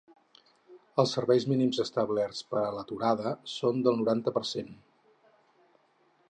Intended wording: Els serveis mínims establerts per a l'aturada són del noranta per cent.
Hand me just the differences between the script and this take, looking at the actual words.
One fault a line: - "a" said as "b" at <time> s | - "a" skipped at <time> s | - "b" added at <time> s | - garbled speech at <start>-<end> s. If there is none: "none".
none